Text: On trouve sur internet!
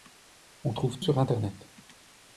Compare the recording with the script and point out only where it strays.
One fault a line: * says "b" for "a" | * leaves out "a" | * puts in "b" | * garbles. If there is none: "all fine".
all fine